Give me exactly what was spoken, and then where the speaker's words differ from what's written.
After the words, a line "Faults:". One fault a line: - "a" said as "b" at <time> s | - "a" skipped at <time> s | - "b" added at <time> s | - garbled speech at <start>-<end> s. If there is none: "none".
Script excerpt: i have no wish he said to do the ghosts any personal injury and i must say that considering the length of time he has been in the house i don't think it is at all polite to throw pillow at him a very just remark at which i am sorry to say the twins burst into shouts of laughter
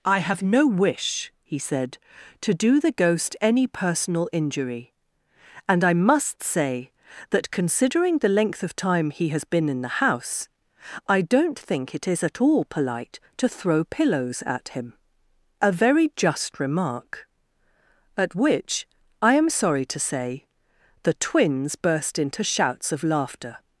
i have no wish he said to do the ghost any personal injury and i must say that considering the length of time he has been in the house i don't think it is at all polite to throw pillows at him a very just remark at which i am sorry to say the twins burst into shouts of laughter
Faults:
- "ghosts" said as "ghost" at 2.9 s
- "pillow" said as "pillows" at 13.8 s